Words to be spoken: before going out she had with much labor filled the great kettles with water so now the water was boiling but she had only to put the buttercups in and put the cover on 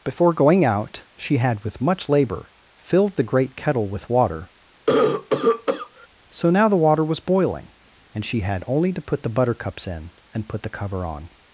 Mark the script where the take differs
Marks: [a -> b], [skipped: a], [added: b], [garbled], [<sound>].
before going out she had with much labor filled the great [kettles -> kettle] with water [cough] so now the water was boiling [but -> and] she had only to put the buttercups in and put the cover on